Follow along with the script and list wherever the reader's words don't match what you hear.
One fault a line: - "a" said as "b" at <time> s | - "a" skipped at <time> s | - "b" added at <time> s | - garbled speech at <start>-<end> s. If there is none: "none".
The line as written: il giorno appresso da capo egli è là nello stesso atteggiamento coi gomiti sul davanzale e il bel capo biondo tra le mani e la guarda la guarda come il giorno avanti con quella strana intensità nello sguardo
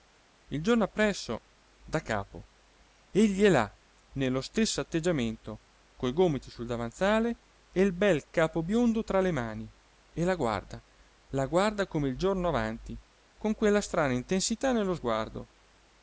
none